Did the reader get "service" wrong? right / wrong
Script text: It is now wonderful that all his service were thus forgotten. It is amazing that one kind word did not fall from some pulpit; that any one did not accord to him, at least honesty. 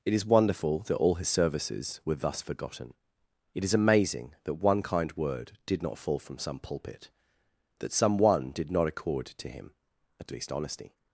wrong